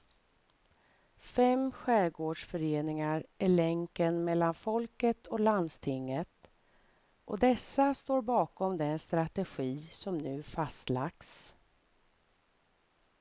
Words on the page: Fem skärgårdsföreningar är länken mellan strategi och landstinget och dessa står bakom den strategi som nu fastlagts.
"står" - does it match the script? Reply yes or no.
yes